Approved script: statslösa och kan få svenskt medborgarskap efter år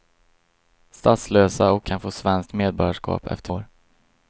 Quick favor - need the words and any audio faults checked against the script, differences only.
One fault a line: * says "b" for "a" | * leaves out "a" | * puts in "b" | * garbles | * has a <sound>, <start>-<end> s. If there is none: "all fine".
all fine